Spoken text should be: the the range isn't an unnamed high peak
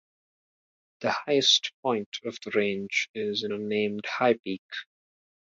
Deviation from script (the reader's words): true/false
true